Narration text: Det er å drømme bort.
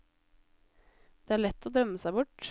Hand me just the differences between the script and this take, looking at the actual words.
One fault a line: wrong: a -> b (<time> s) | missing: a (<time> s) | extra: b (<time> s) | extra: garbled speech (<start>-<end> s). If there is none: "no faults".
extra: lett (1.4 s)
extra: seg (2.0 s)